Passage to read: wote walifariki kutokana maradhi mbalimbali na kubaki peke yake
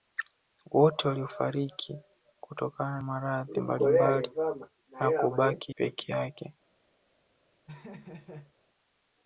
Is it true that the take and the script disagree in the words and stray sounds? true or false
true